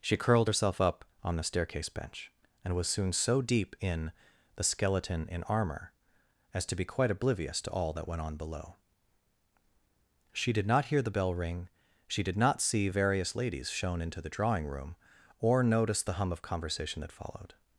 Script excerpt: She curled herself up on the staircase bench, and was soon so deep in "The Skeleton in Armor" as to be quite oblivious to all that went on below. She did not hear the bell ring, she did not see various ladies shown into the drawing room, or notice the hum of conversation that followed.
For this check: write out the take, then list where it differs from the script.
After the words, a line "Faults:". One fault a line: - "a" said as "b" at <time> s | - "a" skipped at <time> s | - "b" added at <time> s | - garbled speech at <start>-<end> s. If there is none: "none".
She curled herself up on the staircase bench, and was soon so deep in "The Skeleton in Armor" as to be quite oblivious to all that went on below. She did not hear the bell ring, she did not see various ladies shown into the drawing room, or notice the hum of conversation that followed.
Faults:
none